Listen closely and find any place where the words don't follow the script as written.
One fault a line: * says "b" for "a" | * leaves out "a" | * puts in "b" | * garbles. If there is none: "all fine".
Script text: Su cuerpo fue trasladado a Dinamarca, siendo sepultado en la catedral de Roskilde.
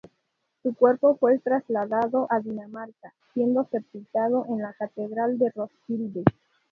all fine